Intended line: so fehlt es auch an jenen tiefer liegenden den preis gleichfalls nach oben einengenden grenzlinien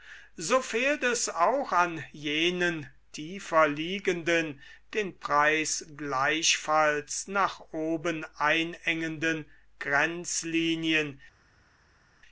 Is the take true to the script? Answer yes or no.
yes